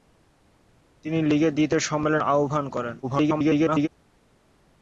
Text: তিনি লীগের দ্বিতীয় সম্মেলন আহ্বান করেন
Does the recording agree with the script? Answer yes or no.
no